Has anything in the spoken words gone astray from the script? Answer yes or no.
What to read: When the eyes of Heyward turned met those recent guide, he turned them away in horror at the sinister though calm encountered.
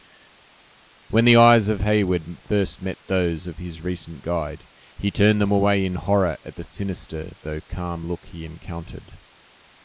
yes